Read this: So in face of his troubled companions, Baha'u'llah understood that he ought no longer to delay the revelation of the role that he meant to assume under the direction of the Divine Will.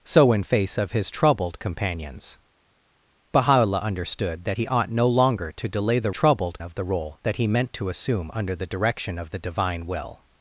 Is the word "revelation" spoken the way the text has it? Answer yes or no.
no